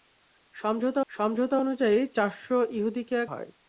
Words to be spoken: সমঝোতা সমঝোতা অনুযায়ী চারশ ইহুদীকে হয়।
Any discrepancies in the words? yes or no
no